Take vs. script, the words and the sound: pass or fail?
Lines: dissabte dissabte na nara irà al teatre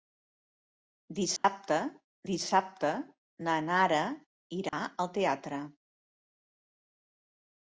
fail